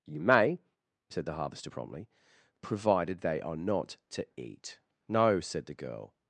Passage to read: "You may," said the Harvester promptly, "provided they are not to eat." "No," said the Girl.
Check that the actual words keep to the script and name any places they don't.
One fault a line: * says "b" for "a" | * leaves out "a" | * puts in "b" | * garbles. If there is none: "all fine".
all fine